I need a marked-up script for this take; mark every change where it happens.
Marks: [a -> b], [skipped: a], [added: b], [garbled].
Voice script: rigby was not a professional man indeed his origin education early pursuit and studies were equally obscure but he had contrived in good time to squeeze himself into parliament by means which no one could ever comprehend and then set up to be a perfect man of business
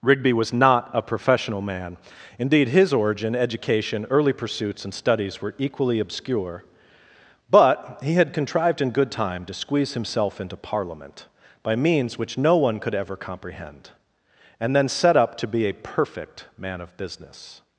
rigby was not a professional man indeed his origin education early [pursuit -> pursuits] and studies were equally obscure but he had contrived in good time to squeeze himself into parliament by means which no one could ever comprehend and then set up to be a perfect man of business